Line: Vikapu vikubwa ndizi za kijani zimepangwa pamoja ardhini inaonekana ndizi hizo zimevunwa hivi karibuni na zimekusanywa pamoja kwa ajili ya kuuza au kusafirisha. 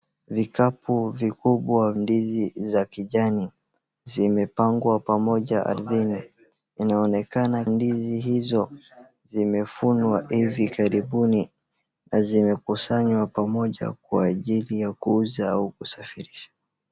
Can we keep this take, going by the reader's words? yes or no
yes